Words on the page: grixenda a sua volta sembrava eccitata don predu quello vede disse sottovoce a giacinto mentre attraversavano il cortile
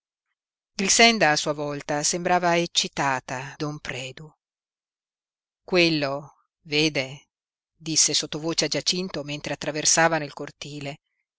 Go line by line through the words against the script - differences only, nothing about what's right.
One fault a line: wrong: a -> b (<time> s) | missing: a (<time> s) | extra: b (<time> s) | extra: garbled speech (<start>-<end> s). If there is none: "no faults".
no faults